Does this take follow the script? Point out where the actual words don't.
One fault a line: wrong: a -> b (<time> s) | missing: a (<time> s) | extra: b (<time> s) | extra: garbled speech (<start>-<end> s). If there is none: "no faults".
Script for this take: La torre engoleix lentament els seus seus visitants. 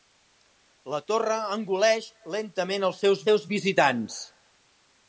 no faults